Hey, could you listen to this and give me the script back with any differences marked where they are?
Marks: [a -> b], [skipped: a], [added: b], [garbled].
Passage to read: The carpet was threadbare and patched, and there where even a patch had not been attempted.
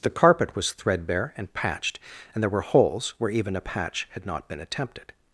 The carpet was threadbare and patched, and there [added: were holes] where even a patch had not been attempted.